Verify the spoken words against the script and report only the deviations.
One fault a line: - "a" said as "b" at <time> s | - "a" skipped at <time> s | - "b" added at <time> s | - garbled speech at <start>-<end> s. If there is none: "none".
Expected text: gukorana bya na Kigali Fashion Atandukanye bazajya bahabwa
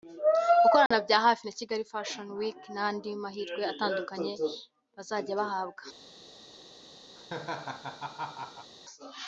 - "hafi" added at 1.2 s
- "Week n'andi mahirwe" added at 2.4 s